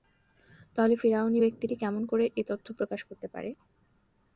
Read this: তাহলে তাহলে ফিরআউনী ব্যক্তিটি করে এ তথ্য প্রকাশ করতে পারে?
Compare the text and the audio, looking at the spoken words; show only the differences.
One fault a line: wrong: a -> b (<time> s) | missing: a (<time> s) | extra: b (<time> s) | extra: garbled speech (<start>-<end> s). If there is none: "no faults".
missing: তাহলে (0.9 s)
extra: কেমন (1.8 s)